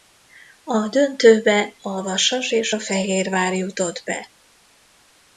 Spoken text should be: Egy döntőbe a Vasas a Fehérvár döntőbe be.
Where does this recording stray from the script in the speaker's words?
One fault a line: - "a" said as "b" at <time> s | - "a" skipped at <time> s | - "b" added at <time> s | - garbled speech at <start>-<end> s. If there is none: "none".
- "Egy" said as "A" at 0.6 s
- "és" added at 2.5 s
- "döntőbe" said as "jutott" at 3.5 s